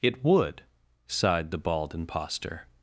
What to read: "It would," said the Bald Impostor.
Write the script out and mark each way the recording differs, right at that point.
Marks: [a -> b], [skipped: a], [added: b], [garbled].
"It would," [said -> sighed] the Bald Impostor.